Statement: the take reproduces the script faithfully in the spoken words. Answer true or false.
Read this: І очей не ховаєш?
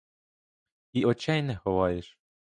true